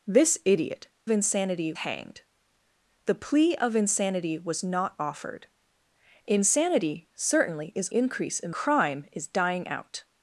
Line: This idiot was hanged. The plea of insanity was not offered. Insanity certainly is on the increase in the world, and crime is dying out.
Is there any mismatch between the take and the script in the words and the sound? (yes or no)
yes